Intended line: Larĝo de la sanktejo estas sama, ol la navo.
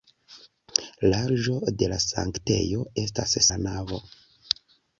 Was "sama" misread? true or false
true